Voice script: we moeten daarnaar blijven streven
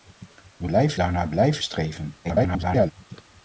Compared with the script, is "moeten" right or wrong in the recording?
wrong